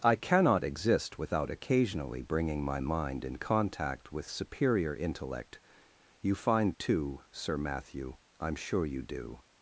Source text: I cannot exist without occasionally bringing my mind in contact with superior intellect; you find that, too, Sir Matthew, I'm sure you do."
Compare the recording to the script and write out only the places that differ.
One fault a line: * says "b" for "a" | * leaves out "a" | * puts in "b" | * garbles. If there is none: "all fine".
* leaves out "that"